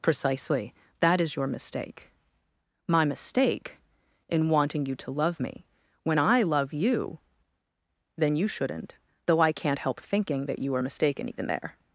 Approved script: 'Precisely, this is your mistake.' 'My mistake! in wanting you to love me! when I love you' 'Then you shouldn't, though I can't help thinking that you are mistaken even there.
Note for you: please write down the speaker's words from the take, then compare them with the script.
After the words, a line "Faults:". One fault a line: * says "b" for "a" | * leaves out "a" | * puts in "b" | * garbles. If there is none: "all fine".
'Precisely, that is your mistake.' 'My mistake! in wanting you to love me! when I love you' 'Then you shouldn't, though I can't help thinking that you are mistaken even there.
Faults:
* says "that" for "this"